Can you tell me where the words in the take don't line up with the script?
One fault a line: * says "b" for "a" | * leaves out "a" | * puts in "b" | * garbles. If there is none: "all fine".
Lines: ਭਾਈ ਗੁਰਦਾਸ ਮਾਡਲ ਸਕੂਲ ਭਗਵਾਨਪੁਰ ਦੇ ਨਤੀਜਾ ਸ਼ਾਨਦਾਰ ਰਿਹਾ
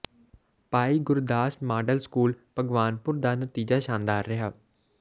* says "ਦਾ" for "ਦੇ"